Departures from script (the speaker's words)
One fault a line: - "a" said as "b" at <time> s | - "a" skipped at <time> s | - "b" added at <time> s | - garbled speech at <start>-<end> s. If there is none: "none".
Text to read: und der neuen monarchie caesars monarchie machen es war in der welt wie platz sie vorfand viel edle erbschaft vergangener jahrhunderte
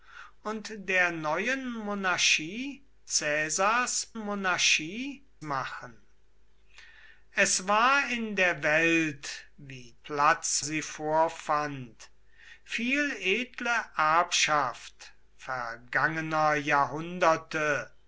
none